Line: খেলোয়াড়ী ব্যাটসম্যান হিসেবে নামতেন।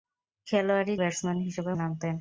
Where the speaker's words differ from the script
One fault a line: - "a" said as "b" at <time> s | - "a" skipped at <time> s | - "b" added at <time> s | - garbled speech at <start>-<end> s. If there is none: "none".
none